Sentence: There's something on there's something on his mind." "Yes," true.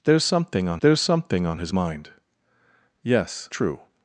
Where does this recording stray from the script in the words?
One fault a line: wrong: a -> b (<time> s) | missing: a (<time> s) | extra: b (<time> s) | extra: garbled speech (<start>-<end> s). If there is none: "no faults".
no faults